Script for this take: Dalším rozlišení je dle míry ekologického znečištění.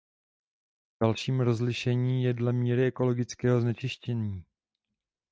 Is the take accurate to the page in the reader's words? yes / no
yes